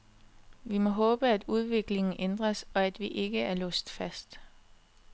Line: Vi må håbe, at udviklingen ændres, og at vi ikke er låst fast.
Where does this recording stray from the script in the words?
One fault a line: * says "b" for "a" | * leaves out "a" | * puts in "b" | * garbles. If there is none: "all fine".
all fine